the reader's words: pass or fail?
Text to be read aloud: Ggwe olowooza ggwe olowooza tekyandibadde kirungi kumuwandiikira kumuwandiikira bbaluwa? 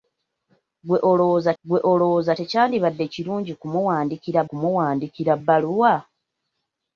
pass